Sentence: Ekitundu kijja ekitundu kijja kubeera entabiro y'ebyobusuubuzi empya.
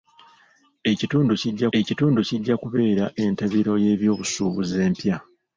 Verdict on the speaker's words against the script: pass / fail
pass